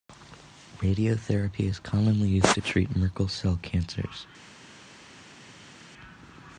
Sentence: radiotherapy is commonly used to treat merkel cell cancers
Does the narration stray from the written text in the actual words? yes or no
no